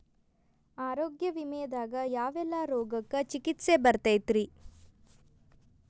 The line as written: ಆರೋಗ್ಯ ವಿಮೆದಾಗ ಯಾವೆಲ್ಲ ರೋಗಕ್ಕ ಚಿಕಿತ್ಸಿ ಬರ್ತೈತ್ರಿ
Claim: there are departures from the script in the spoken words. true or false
false